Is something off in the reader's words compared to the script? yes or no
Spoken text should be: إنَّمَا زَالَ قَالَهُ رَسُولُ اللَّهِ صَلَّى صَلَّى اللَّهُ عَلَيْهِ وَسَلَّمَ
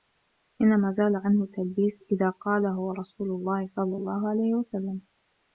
yes